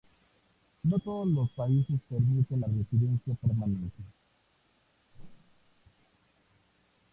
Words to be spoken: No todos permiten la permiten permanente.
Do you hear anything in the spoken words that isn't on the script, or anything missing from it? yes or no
yes